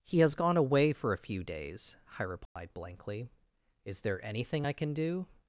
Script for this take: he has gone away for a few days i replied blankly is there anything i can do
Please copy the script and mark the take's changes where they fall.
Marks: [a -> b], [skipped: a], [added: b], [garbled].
he has gone away for a few days i replied blankly is there anything i can do